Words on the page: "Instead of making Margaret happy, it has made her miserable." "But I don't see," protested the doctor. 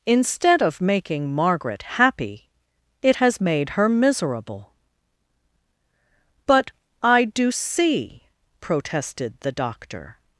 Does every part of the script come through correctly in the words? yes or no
no